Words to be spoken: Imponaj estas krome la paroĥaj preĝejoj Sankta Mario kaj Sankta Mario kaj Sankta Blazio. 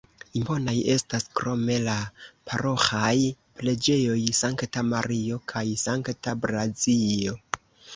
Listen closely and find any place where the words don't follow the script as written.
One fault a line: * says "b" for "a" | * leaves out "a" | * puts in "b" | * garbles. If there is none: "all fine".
* leaves out "Mario kaj Sankta"